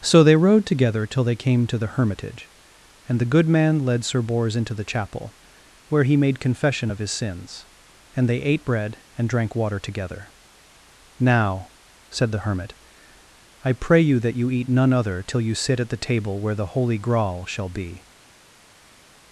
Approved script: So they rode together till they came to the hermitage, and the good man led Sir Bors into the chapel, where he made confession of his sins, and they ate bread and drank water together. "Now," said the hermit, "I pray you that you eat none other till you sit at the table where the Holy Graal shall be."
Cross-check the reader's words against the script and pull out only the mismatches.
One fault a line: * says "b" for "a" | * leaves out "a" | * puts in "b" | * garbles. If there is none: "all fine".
all fine